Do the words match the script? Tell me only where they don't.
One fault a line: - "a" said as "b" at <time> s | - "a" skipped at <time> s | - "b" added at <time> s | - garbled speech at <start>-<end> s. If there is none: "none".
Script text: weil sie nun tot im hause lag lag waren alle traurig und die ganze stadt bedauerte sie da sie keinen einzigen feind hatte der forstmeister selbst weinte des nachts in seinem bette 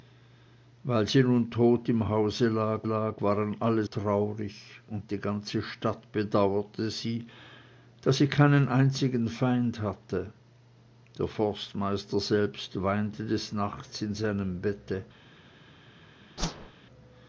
none